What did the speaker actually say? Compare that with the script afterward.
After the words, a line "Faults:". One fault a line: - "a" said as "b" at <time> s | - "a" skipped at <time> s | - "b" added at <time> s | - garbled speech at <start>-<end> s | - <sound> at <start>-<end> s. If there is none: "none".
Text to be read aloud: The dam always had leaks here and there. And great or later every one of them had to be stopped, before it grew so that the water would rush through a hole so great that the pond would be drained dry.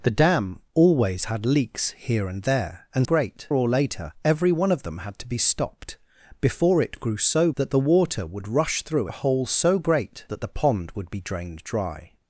The dam always had leaks here and there. And great or later every one of them had to be stopped, before it grew so that the water would rush through a hole so great that the pond would be drained dry.
Faults:
none